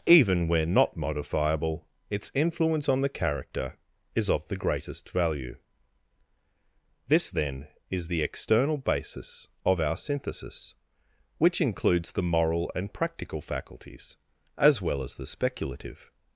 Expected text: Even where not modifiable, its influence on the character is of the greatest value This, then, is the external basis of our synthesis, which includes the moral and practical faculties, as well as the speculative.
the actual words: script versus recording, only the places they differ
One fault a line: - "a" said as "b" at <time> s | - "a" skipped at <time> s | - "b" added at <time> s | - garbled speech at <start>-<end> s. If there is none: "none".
none